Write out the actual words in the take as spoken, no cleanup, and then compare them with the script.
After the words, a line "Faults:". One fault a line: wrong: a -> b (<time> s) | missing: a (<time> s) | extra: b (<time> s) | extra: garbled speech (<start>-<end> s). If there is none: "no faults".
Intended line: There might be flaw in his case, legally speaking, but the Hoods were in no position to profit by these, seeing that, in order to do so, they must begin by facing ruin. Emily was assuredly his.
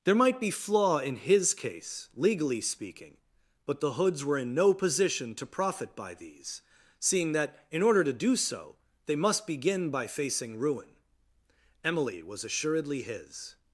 There might be flaw in his case, legally speaking, but the Hoods were in no position to profit by these, seeing that, in order to do so, they must begin by facing ruin. Emily was assuredly his.
Faults:
no faults